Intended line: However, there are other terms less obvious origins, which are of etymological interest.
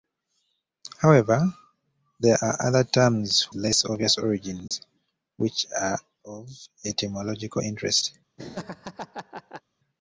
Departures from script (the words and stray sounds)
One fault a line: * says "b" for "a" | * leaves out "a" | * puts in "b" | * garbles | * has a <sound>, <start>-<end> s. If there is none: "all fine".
* has a dropout, 4.7-4.7 s
* has a laugh, 8.4-9.6 s